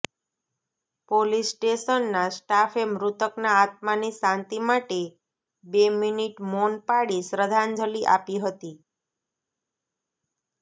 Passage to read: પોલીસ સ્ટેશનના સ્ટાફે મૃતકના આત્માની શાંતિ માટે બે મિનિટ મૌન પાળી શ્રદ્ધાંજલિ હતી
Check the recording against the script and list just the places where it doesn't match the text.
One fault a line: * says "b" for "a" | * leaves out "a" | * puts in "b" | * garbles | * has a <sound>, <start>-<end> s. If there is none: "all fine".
* puts in "આપી"